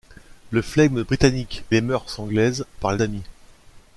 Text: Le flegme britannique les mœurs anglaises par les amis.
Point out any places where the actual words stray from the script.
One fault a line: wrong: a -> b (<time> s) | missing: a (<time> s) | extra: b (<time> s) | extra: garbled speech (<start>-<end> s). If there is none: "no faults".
no faults